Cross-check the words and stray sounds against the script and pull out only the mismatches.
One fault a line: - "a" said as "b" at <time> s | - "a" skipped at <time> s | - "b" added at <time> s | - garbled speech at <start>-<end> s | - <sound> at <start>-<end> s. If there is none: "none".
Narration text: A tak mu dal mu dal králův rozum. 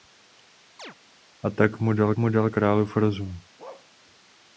- chirp at 0.8-1.0 s
- bark at 3.6-3.9 s